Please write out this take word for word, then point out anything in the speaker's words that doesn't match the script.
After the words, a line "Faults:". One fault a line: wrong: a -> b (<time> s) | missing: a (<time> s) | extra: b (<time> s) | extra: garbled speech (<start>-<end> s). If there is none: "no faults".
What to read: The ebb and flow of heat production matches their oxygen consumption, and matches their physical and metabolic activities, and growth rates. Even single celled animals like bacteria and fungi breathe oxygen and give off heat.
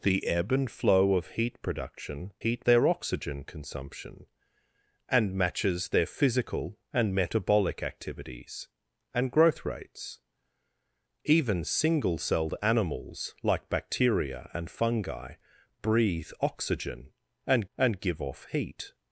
The ebb and flow of heat production heat their oxygen consumption, and matches their physical and metabolic activities, and growth rates. Even single celled animals like bacteria and fungi breathe oxygen and and give off heat.
Faults:
wrong: matches -> heat (2.4 s)
extra: and (17.8 s)